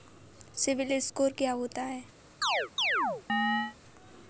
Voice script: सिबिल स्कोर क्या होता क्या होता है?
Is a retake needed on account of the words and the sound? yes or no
yes